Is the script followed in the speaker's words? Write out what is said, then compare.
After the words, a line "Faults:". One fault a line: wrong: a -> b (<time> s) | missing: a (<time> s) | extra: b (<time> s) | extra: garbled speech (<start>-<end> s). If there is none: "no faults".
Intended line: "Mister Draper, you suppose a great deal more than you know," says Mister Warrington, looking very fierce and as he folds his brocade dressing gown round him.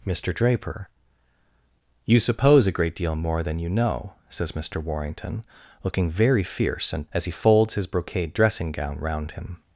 "Mister Draper, you suppose a great deal more than you know," says Mister Warrington, looking very fierce and as he folds his brocade dressing gown round him.
Faults:
no faults